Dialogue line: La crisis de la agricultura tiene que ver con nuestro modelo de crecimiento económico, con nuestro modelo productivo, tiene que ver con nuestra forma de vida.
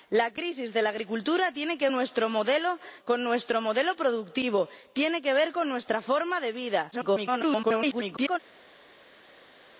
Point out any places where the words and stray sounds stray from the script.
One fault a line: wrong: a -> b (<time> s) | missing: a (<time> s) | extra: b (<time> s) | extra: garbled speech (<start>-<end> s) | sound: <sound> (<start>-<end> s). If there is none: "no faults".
missing: ver con (1.9 s)
missing: de crecimiento económico (2.8 s)
extra: garbled speech (6.9-8.4 s)